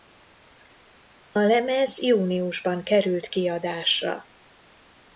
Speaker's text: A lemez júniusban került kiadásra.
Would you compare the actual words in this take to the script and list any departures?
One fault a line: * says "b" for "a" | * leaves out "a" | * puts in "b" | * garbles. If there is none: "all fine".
all fine